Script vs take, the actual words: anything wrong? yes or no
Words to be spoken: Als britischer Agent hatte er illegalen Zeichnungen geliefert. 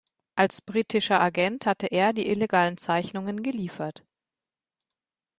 yes